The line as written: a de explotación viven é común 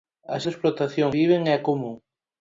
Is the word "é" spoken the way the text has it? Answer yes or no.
yes